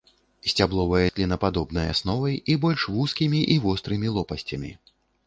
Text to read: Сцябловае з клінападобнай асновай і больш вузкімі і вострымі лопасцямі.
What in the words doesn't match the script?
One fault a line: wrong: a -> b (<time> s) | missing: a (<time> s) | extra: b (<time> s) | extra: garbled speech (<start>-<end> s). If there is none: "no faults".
no faults